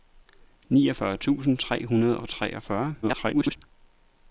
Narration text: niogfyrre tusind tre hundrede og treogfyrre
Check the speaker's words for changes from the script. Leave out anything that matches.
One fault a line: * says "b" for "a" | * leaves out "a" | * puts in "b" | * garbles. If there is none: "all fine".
* garbles